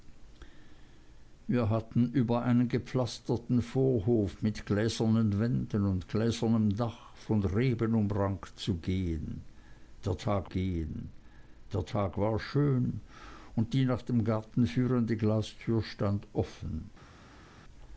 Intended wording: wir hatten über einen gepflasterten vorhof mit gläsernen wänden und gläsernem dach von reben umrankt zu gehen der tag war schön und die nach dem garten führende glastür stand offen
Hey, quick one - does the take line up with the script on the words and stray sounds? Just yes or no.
no